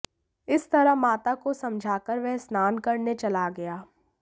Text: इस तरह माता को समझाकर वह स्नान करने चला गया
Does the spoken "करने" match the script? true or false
true